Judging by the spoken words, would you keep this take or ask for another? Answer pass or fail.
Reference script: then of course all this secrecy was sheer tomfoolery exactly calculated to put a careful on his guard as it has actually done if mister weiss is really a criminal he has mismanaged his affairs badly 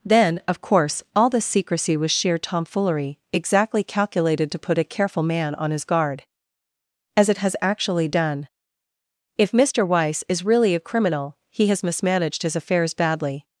fail